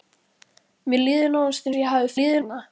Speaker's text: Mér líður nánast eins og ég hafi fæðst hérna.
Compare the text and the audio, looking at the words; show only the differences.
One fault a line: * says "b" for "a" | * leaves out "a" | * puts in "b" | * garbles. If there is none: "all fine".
* leaves out "eins"
* says "líður" for "fæðst"